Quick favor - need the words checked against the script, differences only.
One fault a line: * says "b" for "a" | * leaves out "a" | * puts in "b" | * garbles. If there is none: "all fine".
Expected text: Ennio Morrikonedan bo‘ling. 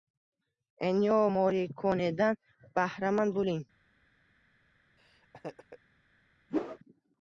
* puts in "bahramand"